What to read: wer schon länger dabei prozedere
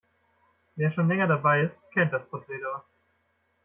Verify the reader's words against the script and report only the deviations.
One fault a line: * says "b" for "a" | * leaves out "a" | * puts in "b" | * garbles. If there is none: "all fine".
* puts in "ist kennt das"